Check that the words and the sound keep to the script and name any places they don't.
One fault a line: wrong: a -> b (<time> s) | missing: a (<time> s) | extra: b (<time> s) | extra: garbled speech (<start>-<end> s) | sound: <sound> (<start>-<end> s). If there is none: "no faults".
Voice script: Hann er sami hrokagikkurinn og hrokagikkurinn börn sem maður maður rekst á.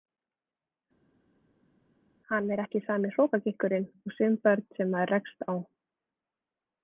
extra: ekki (2.6 s)
wrong: hrokagikkurinn -> sum (4.2 s)
missing: maður (5.2 s)